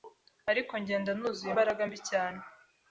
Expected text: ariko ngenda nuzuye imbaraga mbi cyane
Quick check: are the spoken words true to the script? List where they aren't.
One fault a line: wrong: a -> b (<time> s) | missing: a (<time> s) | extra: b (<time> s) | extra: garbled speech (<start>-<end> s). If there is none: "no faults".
no faults